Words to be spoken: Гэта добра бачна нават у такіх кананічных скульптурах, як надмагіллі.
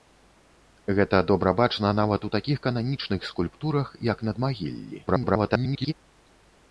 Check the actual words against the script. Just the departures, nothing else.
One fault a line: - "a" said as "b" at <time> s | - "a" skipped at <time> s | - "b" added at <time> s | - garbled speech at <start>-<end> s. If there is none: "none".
- garbled speech at 5.1-5.9 s